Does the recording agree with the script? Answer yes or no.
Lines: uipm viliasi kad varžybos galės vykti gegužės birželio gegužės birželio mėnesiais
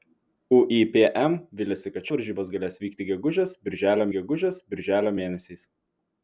yes